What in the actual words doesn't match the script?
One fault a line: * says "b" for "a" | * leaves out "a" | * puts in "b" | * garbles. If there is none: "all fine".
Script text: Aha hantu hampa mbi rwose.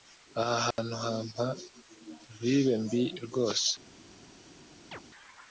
* puts in "vibe"